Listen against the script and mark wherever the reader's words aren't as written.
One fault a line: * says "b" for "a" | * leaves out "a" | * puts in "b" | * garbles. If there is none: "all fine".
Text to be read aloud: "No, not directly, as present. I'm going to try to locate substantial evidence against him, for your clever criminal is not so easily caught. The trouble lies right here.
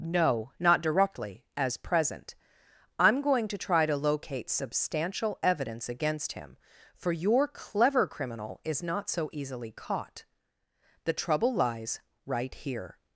all fine